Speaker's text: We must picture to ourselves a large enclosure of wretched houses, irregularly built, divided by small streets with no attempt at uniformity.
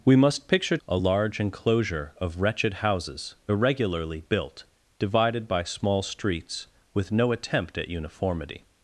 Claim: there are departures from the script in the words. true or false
true